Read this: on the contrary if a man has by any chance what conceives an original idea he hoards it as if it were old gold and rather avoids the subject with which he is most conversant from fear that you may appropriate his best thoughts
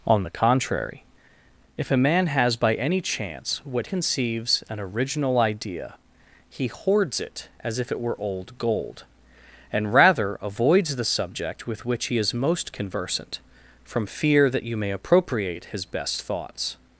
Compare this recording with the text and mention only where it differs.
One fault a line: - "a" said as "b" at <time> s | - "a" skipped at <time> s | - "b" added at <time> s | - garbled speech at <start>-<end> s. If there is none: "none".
none